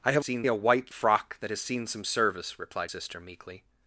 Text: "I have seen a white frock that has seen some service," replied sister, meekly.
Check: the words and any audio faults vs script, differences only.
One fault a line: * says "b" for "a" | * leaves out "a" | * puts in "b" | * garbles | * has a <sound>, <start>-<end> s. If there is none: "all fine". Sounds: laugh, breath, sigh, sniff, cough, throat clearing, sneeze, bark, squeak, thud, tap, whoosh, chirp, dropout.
all fine